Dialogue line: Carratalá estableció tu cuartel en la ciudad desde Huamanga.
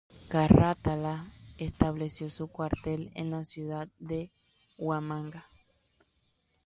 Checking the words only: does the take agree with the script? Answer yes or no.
no